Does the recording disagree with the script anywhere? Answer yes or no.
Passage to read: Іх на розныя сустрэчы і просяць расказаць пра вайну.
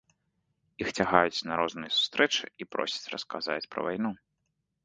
yes